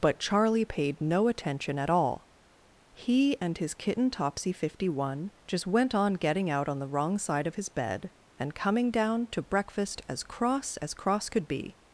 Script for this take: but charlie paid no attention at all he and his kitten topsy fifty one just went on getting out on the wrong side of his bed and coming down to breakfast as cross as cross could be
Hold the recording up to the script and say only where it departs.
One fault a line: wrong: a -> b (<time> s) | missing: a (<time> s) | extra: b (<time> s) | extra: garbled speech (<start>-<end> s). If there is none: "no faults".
no faults